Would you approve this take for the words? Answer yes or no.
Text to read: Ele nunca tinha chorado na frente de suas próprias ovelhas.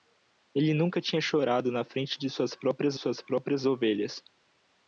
no